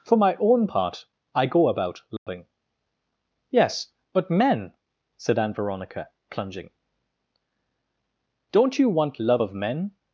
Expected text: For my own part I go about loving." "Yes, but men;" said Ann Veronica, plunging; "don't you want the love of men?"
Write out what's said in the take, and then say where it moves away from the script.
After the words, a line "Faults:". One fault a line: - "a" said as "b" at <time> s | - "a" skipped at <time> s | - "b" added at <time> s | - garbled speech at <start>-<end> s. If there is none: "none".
For my own part I go about loving." "Yes, but men;" said Ann Veronica, plunging; "don't you want love of men?"
Faults:
- "the" skipped at 9.2 s